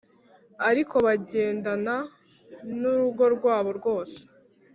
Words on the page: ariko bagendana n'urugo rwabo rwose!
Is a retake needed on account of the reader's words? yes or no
no